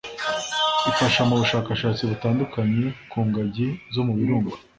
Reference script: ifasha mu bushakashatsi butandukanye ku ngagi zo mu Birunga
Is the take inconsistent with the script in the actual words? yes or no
no